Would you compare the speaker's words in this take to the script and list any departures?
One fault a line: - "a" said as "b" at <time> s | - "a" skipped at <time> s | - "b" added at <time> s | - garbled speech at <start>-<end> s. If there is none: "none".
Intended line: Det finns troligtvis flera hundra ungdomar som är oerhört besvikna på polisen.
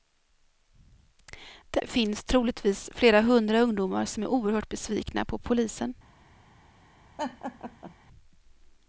none